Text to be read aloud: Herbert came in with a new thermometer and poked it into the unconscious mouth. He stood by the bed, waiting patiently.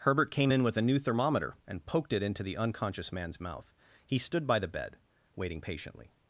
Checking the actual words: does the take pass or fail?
fail